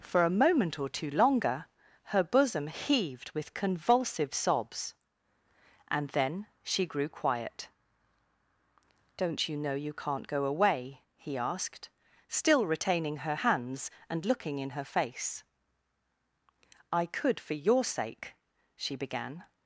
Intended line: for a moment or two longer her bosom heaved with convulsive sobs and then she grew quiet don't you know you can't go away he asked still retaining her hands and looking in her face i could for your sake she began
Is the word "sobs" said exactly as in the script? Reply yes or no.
yes